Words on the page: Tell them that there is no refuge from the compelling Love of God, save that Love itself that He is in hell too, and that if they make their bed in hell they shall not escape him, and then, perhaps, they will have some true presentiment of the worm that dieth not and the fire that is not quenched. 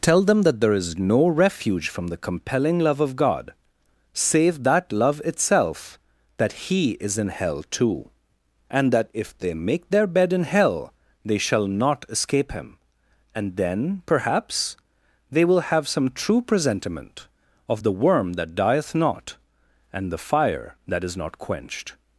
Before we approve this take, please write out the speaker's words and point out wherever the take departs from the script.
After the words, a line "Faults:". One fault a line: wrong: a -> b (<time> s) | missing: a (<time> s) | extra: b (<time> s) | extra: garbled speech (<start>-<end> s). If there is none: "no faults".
Tell them that there is no refuge from the compelling Love of God, save that Love itself that He is in hell too, and that if they make their bed in hell they shall not escape him, and then, perhaps, they will have some true presentiment of the worm that dieth not and the fire that is not quenched.
Faults:
no faults